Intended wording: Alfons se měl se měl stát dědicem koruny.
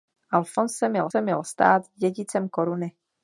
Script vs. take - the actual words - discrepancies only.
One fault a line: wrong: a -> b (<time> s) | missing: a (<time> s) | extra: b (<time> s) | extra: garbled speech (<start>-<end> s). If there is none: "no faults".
no faults